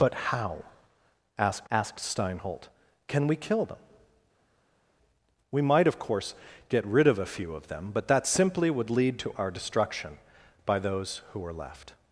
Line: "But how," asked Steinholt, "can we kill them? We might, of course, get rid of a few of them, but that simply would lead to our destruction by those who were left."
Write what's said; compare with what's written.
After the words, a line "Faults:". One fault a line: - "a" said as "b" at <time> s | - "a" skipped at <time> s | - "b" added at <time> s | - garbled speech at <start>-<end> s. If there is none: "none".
"But how," asked asked Steinholt, "can we kill them? We might, of course, get rid of a few of them, but that simply would lead to our destruction by those who were left."
Faults:
- "asked" added at 1.7 s